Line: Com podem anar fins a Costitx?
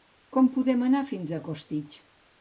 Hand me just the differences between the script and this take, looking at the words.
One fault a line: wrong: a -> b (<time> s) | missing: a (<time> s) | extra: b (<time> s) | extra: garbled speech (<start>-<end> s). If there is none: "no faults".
no faults